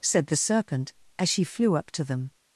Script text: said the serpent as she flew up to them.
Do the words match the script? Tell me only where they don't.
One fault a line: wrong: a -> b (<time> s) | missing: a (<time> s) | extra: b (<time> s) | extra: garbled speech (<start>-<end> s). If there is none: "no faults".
no faults